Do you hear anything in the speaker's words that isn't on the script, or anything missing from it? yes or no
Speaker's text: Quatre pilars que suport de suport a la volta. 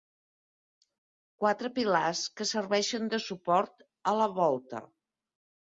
yes